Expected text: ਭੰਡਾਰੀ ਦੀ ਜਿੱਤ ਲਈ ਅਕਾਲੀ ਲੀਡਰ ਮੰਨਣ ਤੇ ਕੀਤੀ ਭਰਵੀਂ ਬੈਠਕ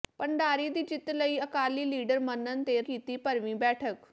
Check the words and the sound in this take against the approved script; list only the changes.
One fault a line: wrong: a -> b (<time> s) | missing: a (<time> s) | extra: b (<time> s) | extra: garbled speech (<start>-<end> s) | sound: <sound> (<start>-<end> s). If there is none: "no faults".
no faults